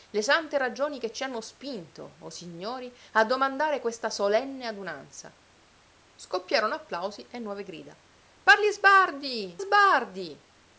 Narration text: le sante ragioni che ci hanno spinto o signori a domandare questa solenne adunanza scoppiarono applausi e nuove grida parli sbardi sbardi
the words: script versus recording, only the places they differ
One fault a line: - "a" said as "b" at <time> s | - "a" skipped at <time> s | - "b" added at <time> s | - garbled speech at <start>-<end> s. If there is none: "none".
none